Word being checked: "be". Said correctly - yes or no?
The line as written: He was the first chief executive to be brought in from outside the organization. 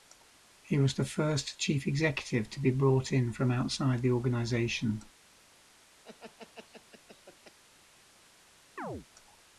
yes